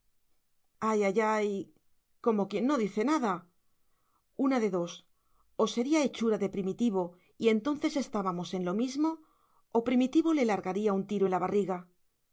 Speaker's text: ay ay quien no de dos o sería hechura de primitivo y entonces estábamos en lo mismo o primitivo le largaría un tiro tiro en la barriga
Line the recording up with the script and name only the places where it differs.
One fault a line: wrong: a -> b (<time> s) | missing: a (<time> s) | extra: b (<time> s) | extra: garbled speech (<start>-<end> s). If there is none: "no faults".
extra: ay como (1.4 s)
extra: dice nada una (2.9 s)
missing: tiro (11.2 s)